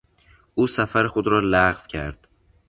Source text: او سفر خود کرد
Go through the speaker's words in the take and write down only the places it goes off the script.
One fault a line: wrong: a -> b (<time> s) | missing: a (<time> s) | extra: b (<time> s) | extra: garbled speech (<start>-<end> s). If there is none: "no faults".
extra: را لغو (1.3 s)